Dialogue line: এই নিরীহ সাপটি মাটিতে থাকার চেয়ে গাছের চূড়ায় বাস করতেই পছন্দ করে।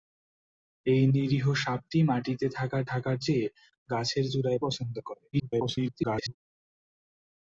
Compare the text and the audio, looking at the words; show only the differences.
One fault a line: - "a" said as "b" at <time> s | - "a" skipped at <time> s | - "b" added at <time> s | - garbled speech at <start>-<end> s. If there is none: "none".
- "থাকার" added at 2.9 s
- "বাস করতেই" skipped at 4.6 s
- garbled speech at 5.3-6.4 s